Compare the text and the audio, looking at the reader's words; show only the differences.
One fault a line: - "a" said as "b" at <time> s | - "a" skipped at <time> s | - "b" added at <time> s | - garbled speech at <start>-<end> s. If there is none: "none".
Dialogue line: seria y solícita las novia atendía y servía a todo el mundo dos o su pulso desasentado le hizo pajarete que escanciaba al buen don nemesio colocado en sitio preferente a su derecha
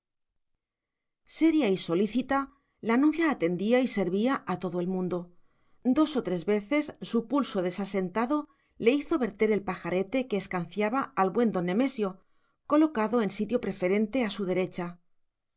- "las" said as "la" at 2.8 s
- "tres veces" added at 6.2 s
- "verter el" added at 9.2 s